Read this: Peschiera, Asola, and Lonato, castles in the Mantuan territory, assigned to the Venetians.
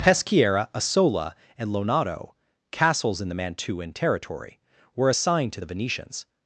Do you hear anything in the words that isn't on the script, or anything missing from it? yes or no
yes